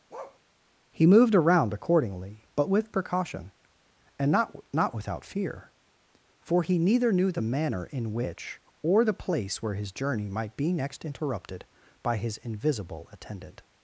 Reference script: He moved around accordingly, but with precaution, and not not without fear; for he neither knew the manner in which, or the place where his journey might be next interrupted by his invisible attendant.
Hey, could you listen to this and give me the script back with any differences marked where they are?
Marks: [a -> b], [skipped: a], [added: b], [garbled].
He moved around accordingly, but with precaution, and not not without fear; for he neither knew the manner in which, or the place where his journey might be next interrupted by his invisible attendant.